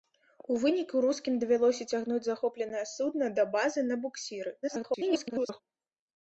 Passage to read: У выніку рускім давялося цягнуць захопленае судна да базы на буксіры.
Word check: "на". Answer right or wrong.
right